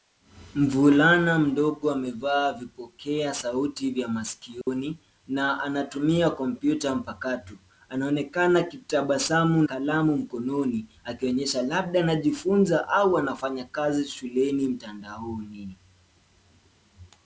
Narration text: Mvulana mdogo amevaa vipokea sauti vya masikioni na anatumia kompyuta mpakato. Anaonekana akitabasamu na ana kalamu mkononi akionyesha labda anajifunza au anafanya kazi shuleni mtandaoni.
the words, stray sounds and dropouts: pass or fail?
fail